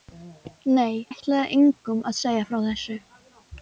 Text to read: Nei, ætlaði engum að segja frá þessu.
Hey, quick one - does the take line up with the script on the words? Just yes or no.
yes